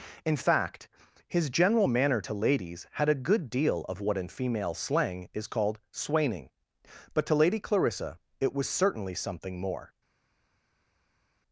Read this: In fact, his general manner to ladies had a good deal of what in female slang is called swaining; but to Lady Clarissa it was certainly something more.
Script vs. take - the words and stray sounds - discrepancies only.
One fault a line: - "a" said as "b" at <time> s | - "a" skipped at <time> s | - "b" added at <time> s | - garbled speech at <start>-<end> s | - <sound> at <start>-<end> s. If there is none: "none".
none